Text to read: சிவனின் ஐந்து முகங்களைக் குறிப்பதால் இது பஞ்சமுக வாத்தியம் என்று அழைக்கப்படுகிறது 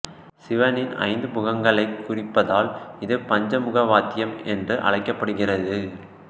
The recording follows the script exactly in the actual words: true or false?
true